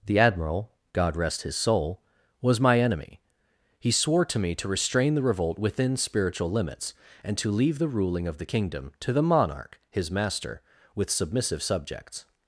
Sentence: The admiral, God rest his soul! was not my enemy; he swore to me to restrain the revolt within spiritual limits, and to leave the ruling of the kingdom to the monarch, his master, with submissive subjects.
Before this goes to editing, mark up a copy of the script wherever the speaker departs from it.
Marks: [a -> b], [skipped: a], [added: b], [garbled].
The admiral, God rest his soul! was [skipped: not] my enemy; he swore to me to restrain the revolt within spiritual limits, and to leave the ruling of the kingdom to the monarch, his master, with submissive subjects.